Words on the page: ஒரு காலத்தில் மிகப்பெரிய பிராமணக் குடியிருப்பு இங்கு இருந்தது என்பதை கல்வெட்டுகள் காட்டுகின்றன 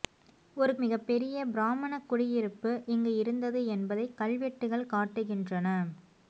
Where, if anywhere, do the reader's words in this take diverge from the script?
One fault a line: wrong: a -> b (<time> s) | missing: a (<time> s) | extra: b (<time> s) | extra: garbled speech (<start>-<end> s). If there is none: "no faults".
missing: காலத்தில் (0.7 s)